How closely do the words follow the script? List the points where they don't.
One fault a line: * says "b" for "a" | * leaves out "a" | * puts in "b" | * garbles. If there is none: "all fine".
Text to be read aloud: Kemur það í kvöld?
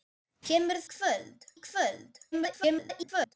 * says "kvöld" for "það"
* garbles